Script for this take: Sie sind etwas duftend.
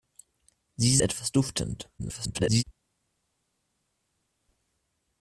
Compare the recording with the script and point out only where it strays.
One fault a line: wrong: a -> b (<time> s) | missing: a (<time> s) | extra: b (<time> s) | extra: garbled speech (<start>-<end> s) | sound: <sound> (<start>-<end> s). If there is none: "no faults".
missing: sind (1.0 s)
extra: garbled speech (2.0-2.6 s)